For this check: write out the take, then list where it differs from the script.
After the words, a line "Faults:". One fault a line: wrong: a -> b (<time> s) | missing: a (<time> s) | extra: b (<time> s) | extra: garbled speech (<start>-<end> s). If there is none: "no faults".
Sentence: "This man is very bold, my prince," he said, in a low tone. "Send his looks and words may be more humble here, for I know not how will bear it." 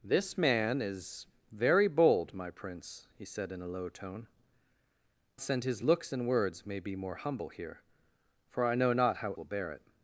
"This man is very bold, my prince," he said, in a low tone. "Send his looks and words may be more humble here, for I know not how will bear it."
Faults:
no faults